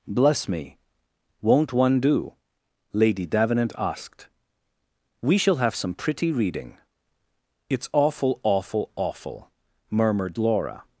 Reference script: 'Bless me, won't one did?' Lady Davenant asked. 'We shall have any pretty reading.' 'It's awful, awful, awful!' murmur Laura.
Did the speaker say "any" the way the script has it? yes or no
no